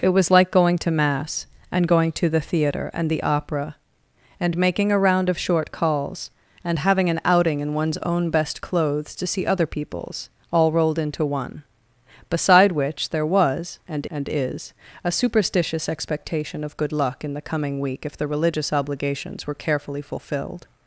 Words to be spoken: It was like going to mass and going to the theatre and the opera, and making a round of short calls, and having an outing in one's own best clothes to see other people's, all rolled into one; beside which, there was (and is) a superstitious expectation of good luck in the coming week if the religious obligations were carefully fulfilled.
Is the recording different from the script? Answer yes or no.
yes